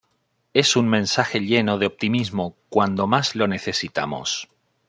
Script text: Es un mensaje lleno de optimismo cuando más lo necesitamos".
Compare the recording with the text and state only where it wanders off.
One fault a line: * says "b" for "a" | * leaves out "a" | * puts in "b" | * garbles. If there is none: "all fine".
all fine